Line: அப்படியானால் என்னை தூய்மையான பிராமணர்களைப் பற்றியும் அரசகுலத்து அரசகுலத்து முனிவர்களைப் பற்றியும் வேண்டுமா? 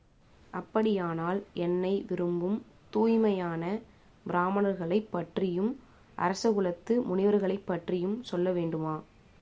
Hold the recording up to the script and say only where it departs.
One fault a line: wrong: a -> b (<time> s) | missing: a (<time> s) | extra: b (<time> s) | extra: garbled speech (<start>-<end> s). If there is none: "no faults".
extra: விரும்பும் (2.1 s)
missing: அரசகுலத்து (7.0 s)
extra: சொல்ல (8.2 s)